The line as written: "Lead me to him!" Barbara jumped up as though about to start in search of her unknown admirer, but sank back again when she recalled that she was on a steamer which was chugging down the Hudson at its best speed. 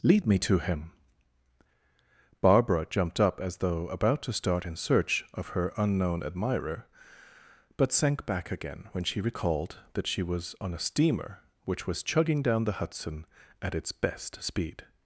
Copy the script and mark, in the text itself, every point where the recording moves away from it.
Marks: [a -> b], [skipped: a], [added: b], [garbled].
"Lead me to him!" Barbara jumped up as though about to start in search of her unknown admirer, but sank back again when she recalled that she was on a steamer which was chugging down the Hudson at its best speed.